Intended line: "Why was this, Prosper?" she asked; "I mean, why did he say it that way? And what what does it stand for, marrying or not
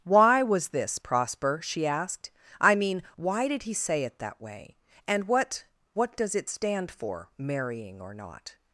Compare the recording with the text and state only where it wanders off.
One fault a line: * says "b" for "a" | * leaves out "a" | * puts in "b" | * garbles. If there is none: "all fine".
all fine